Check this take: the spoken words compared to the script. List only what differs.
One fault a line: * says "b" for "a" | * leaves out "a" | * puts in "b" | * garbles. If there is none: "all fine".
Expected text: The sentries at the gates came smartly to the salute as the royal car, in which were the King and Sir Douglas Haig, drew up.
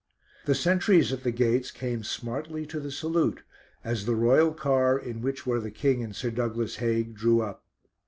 all fine